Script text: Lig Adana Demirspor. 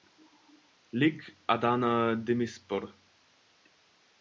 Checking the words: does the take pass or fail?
pass